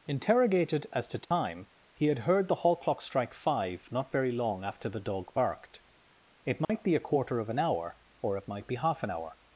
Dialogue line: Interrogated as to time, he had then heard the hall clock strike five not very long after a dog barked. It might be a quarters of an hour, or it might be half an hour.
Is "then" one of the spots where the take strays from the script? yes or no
yes